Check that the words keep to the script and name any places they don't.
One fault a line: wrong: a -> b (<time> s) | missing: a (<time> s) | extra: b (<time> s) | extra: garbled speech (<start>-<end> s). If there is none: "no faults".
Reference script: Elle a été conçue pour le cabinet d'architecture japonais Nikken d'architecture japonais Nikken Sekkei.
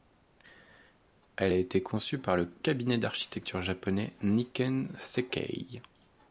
wrong: pour -> par (2.2 s)
missing: d'architecture japonais Nikken (5.0 s)